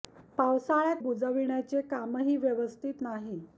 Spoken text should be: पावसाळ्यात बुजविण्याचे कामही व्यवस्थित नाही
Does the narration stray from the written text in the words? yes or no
no